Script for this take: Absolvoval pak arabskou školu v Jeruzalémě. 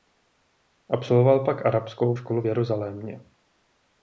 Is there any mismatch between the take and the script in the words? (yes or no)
no